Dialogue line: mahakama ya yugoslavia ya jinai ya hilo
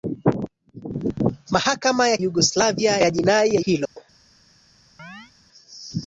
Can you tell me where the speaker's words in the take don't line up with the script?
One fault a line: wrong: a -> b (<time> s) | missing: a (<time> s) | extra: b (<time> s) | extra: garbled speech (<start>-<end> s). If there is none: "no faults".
no faults